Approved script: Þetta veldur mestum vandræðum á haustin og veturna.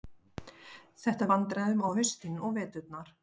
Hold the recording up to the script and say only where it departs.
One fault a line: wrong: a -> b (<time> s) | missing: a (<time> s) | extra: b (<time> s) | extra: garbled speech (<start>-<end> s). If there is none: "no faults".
missing: veldur mestum (1.3 s)